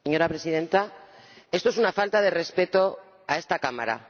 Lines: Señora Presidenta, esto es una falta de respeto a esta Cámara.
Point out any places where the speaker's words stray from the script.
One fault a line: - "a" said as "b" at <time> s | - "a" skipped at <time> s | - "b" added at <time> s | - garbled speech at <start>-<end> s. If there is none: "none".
none